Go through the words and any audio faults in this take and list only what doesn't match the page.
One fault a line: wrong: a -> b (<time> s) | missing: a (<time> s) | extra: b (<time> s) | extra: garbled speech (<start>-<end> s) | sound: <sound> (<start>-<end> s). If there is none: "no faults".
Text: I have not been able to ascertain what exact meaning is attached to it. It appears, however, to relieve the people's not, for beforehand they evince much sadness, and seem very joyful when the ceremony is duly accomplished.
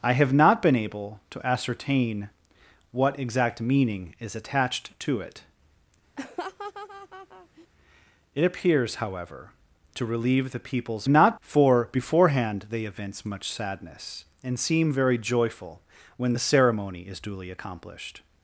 sound: laugh (6.2-7.7 s)